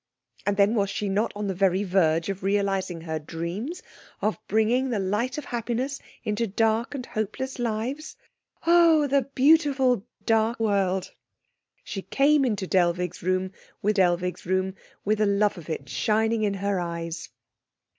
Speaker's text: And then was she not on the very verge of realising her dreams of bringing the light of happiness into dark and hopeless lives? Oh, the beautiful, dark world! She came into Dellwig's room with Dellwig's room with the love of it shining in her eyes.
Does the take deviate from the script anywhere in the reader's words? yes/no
no